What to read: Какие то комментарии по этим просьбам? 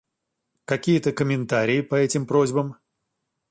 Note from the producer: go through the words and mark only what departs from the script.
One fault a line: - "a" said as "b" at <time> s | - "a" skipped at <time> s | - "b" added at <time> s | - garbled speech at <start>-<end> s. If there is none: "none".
none